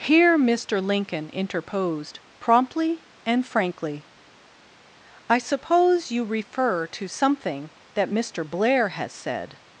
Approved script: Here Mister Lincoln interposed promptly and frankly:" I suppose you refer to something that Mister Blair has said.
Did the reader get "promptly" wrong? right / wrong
right